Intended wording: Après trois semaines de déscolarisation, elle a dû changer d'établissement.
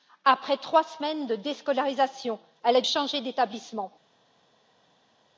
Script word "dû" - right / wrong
wrong